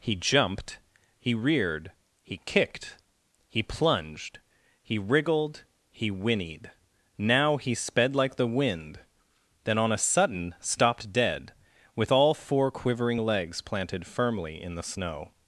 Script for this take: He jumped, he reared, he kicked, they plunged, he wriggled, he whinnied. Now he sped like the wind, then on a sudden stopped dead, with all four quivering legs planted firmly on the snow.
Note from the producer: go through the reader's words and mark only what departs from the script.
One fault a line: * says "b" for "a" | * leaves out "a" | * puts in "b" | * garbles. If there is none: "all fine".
* says "he" for "they"
* says "in" for "on"